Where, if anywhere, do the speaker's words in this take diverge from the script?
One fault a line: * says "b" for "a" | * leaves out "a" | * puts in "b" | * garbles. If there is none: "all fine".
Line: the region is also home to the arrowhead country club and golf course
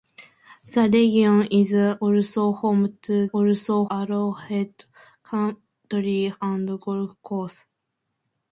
* says "also" for "the"
* leaves out "club"